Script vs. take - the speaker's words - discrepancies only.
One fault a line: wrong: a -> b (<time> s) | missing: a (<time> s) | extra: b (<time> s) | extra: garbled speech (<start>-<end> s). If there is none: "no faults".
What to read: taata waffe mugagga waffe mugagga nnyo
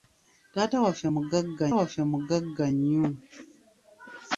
no faults